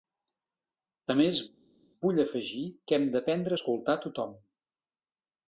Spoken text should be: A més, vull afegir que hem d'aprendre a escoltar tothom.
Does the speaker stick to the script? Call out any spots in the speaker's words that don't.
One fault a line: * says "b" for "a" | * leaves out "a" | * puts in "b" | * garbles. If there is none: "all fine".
all fine